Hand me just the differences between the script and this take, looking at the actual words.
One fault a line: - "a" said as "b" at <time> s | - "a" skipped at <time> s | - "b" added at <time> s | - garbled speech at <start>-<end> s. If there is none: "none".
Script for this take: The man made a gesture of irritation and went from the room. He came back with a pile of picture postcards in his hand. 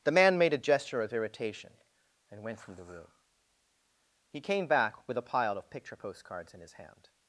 none